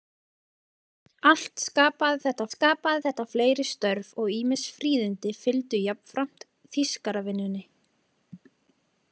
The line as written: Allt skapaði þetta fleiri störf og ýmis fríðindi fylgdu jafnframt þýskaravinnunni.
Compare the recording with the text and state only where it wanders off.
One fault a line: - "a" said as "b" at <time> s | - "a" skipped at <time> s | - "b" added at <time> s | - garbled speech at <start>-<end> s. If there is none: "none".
- "skapaði þetta" added at 2.5 s